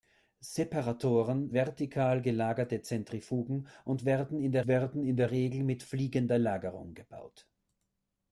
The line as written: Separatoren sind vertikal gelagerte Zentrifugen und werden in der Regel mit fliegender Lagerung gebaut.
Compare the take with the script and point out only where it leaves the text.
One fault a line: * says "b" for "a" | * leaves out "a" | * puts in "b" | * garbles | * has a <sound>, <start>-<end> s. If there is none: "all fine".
* leaves out "sind"
* puts in "werden in der"